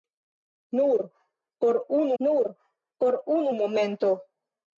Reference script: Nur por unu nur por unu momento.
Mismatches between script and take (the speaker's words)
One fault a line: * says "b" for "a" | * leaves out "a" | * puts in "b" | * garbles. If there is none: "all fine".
all fine